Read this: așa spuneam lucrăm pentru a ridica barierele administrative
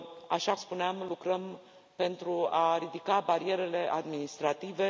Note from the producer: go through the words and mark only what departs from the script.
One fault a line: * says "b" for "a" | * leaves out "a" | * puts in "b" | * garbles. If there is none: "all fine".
all fine